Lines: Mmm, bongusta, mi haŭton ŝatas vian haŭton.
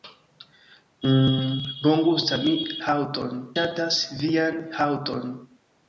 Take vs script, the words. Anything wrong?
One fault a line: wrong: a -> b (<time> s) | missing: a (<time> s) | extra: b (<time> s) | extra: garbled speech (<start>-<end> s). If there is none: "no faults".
no faults